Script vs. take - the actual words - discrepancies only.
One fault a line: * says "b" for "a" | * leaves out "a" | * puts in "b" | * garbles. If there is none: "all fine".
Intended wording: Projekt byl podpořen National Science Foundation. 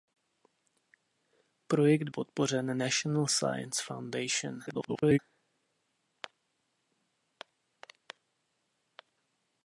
* leaves out "byl"
* garbles